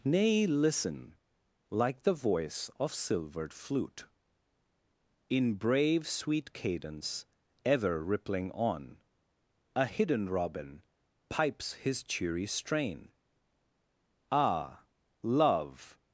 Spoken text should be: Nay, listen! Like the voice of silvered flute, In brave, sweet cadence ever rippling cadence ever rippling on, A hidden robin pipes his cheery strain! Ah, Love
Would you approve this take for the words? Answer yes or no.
no